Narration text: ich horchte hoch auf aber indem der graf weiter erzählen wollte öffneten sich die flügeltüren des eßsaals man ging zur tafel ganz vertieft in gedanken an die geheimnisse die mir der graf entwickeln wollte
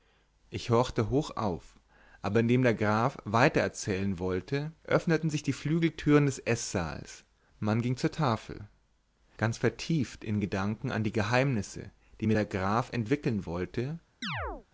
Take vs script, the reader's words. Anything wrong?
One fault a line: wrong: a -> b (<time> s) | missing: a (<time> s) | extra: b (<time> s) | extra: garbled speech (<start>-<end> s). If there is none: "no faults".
no faults